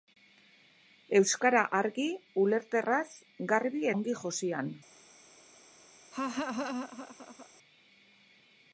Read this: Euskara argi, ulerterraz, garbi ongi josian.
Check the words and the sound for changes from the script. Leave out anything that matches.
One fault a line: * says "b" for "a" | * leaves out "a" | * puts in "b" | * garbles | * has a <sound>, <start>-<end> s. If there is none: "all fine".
* has a laugh, 6.1-7.5 s